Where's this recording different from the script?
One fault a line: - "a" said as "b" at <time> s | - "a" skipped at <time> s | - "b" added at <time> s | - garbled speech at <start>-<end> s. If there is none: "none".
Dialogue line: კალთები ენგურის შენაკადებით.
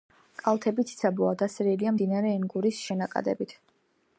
- "ციცაბოა დასერილია მდინარე" added at 0.9 s